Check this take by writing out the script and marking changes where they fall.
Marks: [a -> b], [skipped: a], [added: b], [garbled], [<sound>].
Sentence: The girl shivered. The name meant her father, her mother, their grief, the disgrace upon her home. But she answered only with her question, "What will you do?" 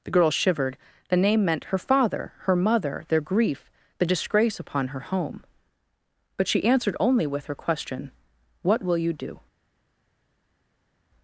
The girl shivered. The name meant her father, her mother, their grief, the disgrace upon her home. But she answered only with her question, "What will you do?"